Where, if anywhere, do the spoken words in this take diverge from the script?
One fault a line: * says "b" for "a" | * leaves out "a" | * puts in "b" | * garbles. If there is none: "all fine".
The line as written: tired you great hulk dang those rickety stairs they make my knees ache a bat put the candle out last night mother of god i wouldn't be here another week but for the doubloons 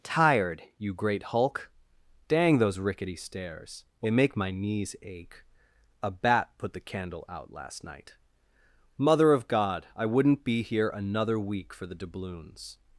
* leaves out "but"